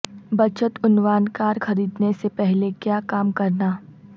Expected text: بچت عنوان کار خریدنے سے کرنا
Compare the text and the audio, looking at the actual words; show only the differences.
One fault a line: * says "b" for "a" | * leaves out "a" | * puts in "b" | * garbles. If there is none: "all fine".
* puts in "پہلے کیا کام"